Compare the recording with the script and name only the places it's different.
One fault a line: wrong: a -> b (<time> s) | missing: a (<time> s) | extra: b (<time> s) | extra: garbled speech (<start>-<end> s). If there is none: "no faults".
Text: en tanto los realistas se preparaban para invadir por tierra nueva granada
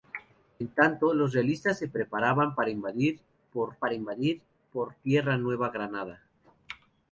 extra: para invadir por (3.8 s)